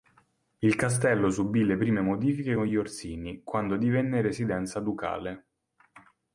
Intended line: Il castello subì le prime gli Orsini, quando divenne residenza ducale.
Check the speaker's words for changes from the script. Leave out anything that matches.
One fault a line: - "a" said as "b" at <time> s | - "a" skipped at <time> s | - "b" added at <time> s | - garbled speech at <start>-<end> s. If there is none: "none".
- "modifiche con" added at 2.0 s